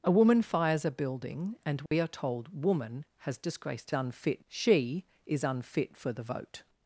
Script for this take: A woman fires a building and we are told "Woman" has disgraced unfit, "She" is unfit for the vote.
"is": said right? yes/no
yes